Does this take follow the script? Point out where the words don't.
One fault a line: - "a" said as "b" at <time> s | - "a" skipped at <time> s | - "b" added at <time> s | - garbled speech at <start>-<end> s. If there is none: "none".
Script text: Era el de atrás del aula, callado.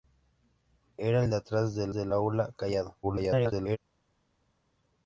- "del" added at 1.9 s
- garbled speech at 3.0-3.8 s